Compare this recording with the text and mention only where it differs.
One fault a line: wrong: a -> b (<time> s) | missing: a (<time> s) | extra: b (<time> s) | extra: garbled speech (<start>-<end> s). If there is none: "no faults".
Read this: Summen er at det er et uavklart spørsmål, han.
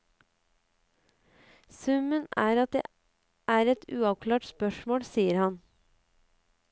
extra: sier (5.1 s)